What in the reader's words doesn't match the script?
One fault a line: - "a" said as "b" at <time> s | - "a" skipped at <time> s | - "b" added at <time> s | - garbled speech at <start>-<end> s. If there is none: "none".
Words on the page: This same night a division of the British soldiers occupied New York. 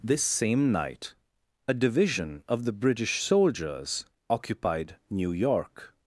none